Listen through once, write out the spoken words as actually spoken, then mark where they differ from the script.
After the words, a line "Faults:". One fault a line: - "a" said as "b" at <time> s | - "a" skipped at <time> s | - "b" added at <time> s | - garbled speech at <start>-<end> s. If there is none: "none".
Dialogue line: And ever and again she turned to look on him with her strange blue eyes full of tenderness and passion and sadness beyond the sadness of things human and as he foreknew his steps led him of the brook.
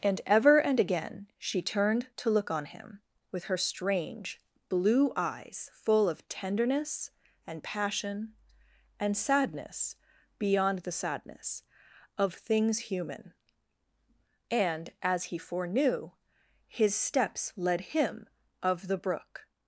And ever and again she turned to look on him with her strange blue eyes full of tenderness and passion and sadness beyond the sadness of things human and as he foreknew his steps led him of the brook.
Faults:
none